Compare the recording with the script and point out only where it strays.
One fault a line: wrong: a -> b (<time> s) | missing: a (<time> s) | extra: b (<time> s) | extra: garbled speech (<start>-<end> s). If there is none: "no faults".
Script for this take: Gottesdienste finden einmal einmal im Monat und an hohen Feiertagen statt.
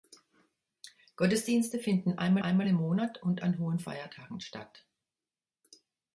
no faults